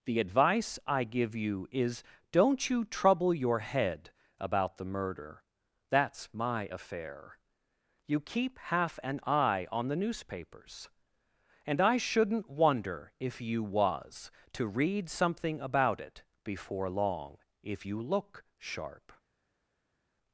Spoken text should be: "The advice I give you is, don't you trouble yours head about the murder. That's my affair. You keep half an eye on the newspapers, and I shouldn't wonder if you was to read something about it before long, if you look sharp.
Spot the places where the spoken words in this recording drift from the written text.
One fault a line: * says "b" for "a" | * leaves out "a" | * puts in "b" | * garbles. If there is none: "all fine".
* says "your" for "yours"